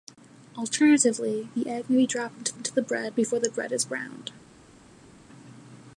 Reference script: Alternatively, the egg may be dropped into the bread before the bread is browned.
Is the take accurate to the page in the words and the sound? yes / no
no